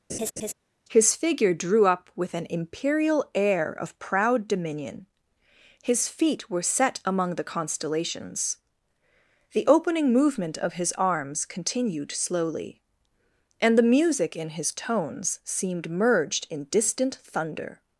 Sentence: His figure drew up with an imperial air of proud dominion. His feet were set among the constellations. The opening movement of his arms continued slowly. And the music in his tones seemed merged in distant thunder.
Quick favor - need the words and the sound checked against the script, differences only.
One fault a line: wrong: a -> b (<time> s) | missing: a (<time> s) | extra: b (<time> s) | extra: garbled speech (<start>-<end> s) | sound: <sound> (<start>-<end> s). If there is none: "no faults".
sound: laugh (0.1-0.5 s)